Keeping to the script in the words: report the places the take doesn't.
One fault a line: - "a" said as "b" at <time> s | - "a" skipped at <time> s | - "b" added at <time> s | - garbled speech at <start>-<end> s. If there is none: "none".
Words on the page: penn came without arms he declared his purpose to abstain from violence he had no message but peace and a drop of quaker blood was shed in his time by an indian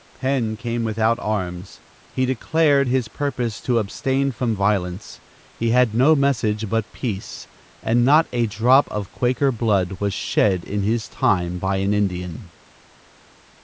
- "not" added at 8.0 s